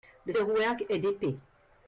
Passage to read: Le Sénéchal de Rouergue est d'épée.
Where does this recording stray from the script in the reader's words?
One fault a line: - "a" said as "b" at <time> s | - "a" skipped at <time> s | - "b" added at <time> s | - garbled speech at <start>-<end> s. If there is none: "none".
- "Sénéchal" skipped at 0.3 s